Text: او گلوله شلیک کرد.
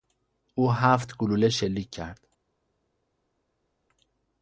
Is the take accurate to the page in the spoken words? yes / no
no